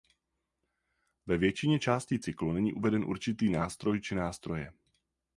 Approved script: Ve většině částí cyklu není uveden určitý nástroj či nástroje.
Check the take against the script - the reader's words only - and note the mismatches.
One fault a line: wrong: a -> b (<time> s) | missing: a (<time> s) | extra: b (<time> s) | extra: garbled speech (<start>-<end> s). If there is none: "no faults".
no faults